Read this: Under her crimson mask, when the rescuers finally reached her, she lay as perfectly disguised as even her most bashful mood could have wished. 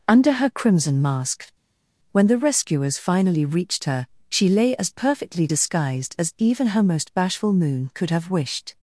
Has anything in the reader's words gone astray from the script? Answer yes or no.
yes